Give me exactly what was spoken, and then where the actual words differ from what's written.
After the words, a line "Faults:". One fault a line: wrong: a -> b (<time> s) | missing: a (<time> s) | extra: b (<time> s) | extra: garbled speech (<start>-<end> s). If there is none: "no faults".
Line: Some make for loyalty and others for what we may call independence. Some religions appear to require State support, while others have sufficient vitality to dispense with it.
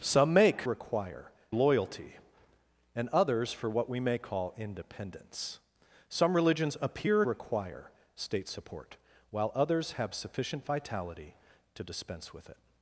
Some make require loyalty and others for what we may call independence. Some religions appear require State support, while others have sufficient vitality to dispense with it.
Faults:
wrong: for -> require (0.6 s)
missing: to (7.2 s)